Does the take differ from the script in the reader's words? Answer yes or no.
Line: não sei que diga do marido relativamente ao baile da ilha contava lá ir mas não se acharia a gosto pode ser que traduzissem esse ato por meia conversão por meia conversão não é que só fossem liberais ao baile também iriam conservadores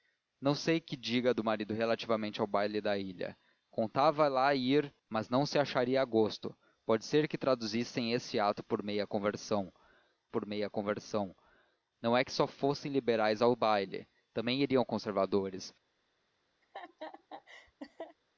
no